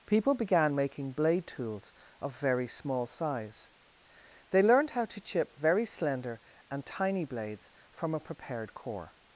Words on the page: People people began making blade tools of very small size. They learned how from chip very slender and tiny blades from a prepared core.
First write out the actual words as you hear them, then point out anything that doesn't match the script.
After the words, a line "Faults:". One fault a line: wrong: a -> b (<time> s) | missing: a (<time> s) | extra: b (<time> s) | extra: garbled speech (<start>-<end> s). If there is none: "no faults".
People began making blade tools of very small size. They learned how to chip very slender and tiny blades from a prepared core.
Faults:
missing: people (0.3 s)
wrong: from -> to (5.0 s)